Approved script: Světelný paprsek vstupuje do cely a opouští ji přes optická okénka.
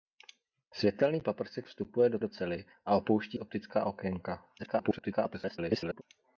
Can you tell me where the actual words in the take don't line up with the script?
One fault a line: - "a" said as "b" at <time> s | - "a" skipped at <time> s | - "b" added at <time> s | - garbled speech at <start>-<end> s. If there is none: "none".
- "do" added at 2.2 s
- "ji přes" skipped at 3.4 s
- garbled speech at 4.6-6.0 s